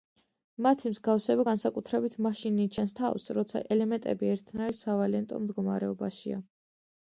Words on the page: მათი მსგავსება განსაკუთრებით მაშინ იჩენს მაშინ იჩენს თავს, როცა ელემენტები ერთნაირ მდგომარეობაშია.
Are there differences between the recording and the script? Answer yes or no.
yes